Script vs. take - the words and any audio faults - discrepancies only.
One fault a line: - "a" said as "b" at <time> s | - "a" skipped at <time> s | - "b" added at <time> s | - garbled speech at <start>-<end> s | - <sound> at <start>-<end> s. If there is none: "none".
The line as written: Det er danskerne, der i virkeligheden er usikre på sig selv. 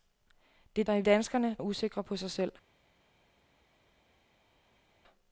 - "danskerne" skipped at 0.8 s
- "virkeligheden" said as "danskerne" at 1.0 s